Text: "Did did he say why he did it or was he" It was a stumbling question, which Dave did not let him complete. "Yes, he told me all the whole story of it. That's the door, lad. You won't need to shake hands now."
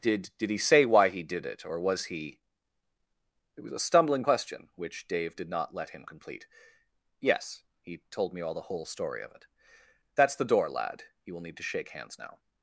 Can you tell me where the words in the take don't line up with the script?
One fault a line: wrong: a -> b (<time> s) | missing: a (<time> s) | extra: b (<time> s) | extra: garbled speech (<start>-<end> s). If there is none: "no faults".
wrong: won't -> will (11.3 s)